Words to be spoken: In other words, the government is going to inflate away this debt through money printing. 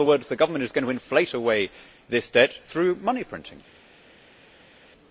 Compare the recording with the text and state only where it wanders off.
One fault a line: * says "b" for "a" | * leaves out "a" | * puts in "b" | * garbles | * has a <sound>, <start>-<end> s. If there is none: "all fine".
all fine